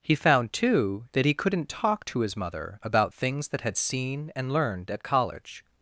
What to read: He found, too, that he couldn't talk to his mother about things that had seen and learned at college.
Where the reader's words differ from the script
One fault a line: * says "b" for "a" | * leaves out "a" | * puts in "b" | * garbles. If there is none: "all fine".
all fine